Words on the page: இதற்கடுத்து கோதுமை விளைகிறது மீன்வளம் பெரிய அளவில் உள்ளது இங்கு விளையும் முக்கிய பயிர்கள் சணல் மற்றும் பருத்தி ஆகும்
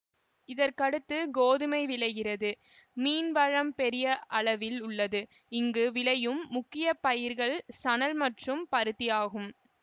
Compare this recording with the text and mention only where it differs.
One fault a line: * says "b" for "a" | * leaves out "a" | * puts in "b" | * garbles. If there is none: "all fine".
all fine